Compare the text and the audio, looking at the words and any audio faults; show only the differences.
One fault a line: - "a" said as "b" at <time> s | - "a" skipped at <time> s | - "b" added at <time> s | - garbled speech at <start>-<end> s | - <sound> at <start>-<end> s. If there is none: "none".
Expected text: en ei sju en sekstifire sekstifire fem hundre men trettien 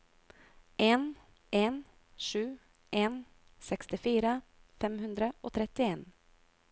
- "ei" said as "en" at 1.5 s
- "sekstifire" skipped at 4.3 s
- "men" said as "og" at 5.4 s